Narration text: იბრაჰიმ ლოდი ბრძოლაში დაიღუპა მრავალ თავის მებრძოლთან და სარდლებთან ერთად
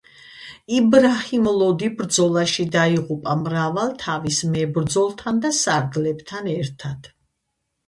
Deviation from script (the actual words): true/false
false